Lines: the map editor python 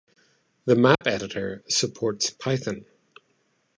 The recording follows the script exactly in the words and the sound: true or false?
false